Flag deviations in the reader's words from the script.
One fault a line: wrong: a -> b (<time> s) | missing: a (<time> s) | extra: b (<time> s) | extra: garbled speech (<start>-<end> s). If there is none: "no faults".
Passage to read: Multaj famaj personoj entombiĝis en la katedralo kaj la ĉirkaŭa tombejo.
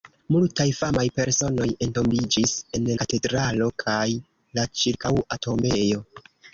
missing: la (2.9 s)